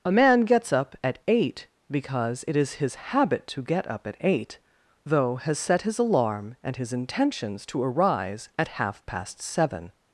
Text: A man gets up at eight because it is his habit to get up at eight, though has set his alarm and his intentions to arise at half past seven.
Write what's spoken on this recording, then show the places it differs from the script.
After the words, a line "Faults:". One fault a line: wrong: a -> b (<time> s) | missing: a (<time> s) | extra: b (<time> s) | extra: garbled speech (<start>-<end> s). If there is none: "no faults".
A man gets up at eight because it is his habit to get up at eight, though has set his alarm and his intentions to arise at half past seven.
Faults:
no faults